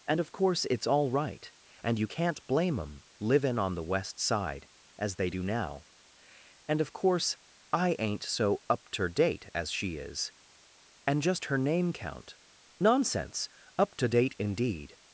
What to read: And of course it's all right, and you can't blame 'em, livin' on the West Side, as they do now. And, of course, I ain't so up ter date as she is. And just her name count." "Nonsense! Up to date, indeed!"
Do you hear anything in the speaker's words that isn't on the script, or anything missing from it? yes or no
no